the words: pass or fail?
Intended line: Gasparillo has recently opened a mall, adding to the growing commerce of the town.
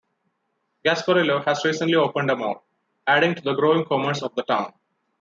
pass